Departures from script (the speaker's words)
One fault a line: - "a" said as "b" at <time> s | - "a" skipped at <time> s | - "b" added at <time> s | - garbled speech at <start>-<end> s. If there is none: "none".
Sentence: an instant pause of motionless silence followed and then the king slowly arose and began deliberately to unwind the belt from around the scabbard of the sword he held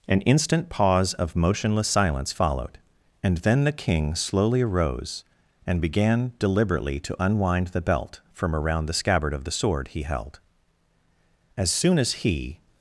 - "as soon as he" added at 11.6 s